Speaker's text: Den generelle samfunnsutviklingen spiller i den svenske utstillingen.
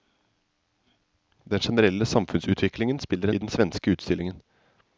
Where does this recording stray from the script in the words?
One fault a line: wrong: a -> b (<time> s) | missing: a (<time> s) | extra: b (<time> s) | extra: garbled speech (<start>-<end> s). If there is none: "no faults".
no faults